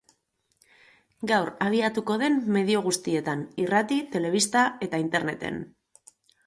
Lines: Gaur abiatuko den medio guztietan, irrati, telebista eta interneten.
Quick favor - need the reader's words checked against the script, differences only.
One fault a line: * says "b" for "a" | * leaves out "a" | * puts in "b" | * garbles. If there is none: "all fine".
all fine